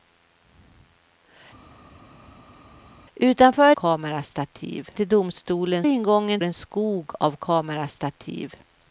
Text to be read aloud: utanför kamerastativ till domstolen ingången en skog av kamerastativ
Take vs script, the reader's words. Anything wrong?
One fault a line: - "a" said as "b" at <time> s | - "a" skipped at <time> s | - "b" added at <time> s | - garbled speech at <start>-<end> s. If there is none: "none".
none